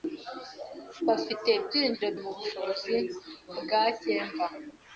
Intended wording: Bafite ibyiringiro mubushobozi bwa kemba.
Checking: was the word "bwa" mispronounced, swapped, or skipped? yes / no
no